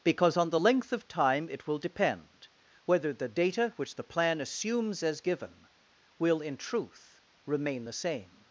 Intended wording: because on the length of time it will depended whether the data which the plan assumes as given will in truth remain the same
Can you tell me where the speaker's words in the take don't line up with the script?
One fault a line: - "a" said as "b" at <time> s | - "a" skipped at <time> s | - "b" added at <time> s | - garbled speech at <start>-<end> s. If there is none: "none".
- "depended" said as "depend" at 1.8 s